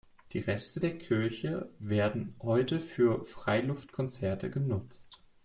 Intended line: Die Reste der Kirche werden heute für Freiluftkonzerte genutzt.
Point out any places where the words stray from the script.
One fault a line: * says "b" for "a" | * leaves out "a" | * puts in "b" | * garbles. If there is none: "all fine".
all fine